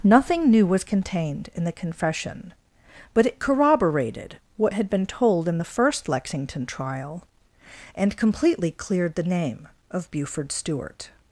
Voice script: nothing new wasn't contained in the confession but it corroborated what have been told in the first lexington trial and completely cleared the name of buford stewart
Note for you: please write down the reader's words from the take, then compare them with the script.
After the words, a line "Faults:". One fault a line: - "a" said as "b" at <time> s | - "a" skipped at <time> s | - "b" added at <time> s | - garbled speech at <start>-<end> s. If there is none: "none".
nothing new was contained in the confession but it corroborated what had been told in the first lexington trial and completely cleared the name of buford stewart
Faults:
- "wasn't" said as "was" at 0.7 s
- "have" said as "had" at 4.7 s